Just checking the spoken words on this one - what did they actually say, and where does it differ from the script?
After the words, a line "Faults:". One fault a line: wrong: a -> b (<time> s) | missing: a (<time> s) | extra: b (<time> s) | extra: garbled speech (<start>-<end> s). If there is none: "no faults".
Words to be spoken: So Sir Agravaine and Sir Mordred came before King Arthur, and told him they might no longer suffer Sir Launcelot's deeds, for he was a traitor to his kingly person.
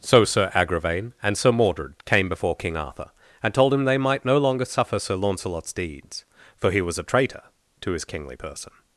So Sir Agravaine and Sir Mordred came before King Arthur, and told him they might no longer suffer Sir Launcelot's deeds, for he was a traitor to his kingly person.
Faults:
no faults